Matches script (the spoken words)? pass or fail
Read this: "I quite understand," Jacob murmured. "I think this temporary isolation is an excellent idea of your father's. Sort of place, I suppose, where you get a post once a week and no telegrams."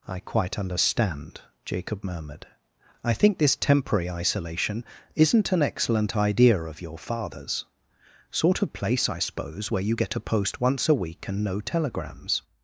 fail